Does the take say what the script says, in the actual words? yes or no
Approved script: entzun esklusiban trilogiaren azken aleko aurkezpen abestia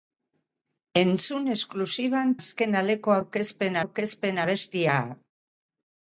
no